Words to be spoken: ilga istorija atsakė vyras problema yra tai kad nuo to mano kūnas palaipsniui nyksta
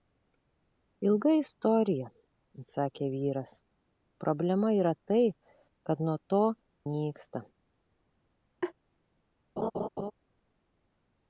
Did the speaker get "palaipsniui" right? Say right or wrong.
wrong